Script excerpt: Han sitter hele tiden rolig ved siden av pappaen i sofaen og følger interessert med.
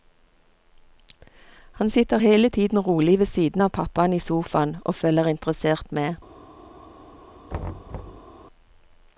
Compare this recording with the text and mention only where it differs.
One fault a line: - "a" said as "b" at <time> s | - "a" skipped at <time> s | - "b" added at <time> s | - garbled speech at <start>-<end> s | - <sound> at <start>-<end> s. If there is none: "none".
- thud at 7.5-8.3 s